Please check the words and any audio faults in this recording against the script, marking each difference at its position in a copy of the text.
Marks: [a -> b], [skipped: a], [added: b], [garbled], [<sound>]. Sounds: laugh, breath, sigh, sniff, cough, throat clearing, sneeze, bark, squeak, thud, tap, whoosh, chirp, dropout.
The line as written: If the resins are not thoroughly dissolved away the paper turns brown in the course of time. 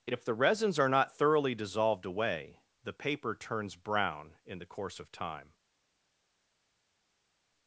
If the resins are not thoroughly dissolved away the paper turns brown in the course of time.